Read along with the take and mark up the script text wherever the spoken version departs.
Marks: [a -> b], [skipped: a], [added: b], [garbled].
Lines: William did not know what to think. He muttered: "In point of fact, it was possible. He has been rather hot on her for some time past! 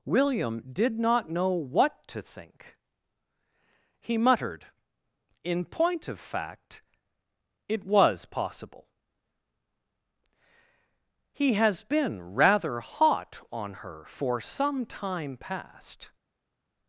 William did not know what to think. He muttered: "In point of fact, it was possible. He has been rather hot on her for some time past!